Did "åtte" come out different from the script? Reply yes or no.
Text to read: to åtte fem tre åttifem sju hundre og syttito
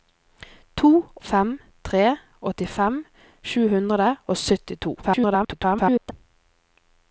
yes